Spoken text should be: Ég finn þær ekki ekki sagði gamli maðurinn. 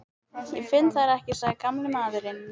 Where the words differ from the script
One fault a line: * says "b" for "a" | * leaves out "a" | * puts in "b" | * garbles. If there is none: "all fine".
* leaves out "ekki"